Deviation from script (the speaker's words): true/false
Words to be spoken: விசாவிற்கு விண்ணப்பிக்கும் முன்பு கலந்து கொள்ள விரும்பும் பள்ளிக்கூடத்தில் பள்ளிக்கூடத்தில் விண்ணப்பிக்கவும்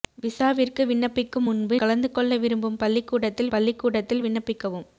false